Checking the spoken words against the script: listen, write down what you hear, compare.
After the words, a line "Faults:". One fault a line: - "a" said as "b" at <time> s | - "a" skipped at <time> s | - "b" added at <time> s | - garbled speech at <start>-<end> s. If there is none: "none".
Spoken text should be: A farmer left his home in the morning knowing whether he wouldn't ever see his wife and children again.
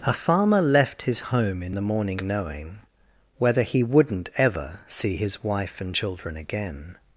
A farmer left his home in the morning knowing whether he wouldn't ever see his wife and children again.
Faults:
none